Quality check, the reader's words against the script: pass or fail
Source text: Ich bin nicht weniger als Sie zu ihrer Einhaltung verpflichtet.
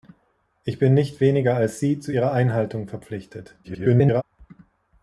fail